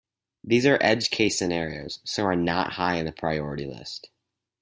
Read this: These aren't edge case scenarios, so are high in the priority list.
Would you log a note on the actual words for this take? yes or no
yes